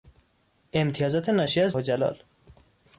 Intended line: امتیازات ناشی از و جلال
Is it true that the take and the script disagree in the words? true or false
false